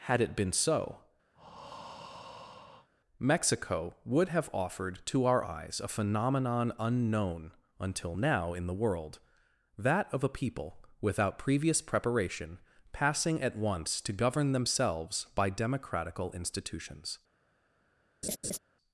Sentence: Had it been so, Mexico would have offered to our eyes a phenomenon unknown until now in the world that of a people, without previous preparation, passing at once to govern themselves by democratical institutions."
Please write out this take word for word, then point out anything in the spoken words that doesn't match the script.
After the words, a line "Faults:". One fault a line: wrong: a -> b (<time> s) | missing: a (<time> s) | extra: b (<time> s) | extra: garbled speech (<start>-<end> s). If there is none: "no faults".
Had it been so, Mexico would have offered to our eyes a phenomenon unknown until now in the world that of a people, without previous preparation, passing at once to govern themselves by democratical institutions."
Faults:
no faults